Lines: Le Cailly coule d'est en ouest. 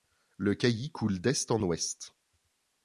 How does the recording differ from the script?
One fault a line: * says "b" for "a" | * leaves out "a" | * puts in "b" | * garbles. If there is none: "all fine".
all fine